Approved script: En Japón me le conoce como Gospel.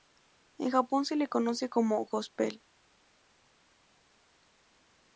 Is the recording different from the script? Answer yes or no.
yes